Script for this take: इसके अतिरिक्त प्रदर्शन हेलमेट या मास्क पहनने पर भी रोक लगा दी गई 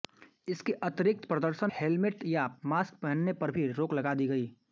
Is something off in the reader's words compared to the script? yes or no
no